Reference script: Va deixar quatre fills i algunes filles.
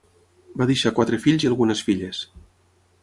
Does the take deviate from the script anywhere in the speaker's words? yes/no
no